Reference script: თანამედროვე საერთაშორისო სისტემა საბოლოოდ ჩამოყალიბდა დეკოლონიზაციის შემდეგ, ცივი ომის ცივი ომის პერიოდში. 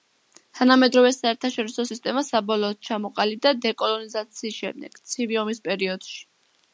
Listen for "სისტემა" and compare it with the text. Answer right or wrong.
right